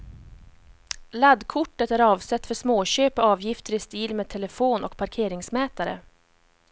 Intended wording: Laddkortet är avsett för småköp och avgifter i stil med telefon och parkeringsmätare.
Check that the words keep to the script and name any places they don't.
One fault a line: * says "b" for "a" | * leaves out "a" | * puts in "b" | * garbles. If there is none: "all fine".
all fine